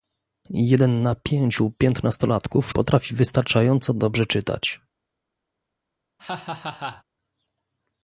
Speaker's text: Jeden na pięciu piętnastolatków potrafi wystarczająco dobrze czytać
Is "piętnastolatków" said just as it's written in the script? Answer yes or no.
yes